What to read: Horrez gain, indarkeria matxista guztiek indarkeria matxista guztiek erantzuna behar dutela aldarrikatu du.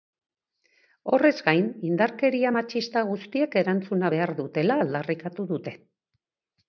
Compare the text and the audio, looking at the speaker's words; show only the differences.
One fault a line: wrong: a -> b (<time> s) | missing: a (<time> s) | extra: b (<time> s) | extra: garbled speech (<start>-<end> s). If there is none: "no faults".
missing: indarkeria matxista guztiek (3.6 s)
wrong: du -> dute (5.5 s)